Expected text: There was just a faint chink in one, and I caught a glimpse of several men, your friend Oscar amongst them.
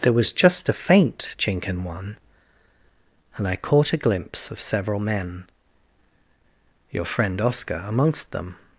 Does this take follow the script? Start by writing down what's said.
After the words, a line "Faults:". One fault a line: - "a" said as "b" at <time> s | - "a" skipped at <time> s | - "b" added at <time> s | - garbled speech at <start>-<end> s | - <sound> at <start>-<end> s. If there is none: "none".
There was just a faint chink in one, and I caught a glimpse of several men, your friend Oscar amongst them.
Faults:
none